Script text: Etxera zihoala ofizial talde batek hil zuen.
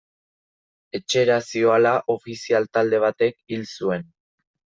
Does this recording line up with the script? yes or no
yes